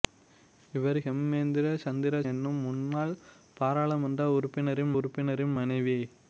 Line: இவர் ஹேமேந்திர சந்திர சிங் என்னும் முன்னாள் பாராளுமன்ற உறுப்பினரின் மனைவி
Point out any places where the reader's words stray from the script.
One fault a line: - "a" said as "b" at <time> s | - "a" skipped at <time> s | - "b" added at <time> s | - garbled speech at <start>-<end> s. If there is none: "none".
- "சிங்" skipped at 2.2 s
- "உறுப்பினரின்" added at 5.0 s